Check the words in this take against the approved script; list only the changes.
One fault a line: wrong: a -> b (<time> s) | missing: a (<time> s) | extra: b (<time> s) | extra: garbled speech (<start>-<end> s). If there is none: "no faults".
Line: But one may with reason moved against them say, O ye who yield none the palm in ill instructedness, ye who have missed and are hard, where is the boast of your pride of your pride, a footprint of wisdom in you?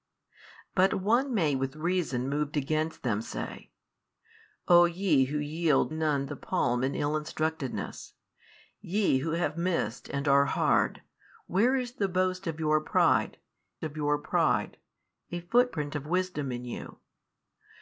no faults